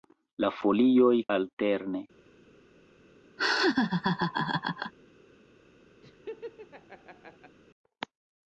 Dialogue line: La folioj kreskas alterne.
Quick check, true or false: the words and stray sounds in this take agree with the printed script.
false